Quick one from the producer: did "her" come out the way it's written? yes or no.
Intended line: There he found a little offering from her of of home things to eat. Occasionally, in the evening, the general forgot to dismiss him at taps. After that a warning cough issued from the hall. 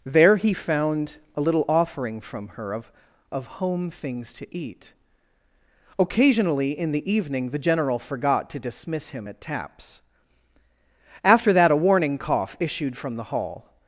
yes